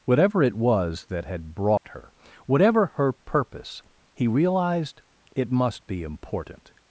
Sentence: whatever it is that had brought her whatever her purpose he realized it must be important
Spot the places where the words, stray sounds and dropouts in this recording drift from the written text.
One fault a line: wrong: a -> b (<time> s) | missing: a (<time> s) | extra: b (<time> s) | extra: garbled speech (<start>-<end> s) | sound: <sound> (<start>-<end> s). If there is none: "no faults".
wrong: is -> was (0.6 s)
sound: dropout (1.8-1.8 s)